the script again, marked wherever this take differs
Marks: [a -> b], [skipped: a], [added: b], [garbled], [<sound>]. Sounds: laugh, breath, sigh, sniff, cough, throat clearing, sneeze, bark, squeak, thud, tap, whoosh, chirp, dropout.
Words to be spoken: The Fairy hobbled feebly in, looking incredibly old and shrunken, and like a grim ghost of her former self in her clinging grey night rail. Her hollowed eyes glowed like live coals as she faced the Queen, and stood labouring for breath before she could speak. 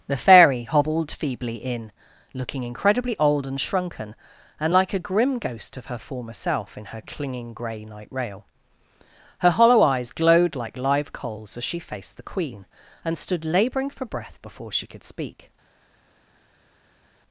The Fairy hobbled feebly in, looking incredibly old and shrunken, and like a grim ghost of her former self in her clinging grey night rail. Her [hollowed -> hollow] eyes glowed like live coals as she faced the Queen, and stood labouring for breath before she could speak.